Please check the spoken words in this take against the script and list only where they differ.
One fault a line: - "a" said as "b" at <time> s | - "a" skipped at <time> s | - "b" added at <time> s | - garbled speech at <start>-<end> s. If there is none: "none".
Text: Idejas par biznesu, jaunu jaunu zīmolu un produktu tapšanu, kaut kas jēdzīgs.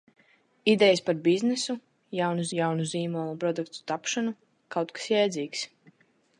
none